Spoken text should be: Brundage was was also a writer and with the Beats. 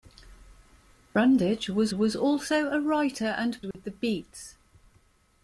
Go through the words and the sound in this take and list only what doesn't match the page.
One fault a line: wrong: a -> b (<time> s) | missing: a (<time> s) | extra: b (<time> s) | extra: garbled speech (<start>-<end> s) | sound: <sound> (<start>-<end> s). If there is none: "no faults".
sound: dropout (3.7-3.7 s)